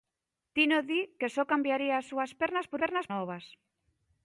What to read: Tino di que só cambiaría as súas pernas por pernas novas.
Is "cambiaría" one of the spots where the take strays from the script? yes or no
no